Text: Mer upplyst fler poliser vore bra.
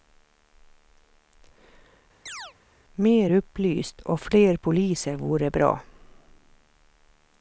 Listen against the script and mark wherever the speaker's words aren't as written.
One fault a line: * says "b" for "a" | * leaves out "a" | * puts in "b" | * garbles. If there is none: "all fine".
* puts in "och"